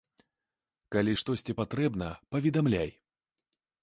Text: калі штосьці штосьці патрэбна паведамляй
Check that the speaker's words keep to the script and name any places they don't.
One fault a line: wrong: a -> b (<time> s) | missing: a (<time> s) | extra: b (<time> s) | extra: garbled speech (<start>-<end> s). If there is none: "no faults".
missing: штосьці (1.6 s)